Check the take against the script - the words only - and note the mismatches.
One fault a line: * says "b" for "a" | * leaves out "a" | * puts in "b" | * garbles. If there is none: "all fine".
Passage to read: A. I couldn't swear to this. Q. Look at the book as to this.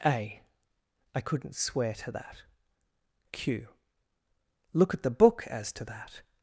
* says "that" for "this"
* says "that" for "this"